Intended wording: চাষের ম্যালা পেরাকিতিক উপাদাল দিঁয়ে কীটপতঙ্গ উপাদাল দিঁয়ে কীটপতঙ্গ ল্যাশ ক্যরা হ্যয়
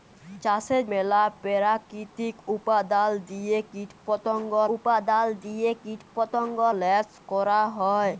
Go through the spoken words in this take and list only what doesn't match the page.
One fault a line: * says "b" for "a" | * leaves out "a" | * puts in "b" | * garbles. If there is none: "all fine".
all fine